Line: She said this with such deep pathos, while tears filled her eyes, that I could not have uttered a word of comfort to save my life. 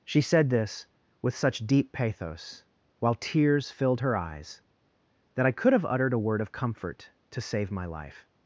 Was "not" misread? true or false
true